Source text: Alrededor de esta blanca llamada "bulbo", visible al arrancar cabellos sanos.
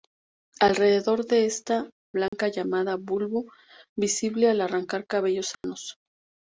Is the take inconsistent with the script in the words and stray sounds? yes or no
yes